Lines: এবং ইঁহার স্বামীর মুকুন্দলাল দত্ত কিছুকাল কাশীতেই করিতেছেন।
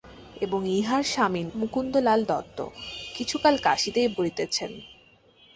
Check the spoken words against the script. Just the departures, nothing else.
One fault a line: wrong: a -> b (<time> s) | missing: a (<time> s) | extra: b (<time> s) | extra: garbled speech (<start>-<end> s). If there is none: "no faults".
no faults